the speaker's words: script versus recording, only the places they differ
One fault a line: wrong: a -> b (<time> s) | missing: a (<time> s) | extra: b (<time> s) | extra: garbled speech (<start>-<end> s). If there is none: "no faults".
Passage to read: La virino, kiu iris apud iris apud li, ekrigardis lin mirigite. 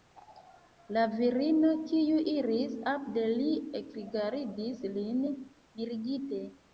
missing: iris apud (3.2 s)